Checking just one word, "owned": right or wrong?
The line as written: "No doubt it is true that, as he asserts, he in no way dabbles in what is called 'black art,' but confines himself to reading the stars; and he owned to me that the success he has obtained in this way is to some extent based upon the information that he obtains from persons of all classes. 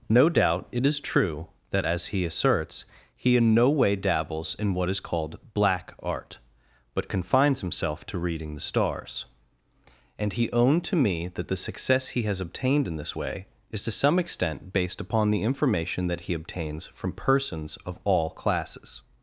right